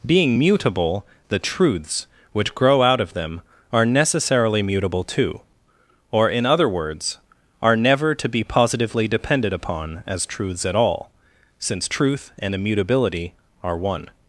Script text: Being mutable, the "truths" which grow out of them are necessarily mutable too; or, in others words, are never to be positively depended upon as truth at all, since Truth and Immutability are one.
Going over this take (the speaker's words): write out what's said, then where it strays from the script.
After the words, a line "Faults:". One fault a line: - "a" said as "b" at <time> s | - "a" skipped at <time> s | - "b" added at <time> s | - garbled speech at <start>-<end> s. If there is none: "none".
Being mutable, the "truths" which grow out of them are necessarily mutable too; or, in other words, are never to be positively depended upon as truths at all, since Truth and Immutability are one.
Faults:
- "others" said as "other" at 6.5 s
- "truth" said as "truths" at 10.2 s